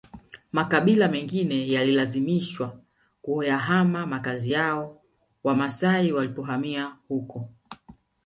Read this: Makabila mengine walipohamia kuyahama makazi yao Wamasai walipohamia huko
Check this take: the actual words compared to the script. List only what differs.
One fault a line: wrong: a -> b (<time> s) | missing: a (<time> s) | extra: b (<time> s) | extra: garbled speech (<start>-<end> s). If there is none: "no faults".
wrong: walipohamia -> yalilazimishwa (1.7 s)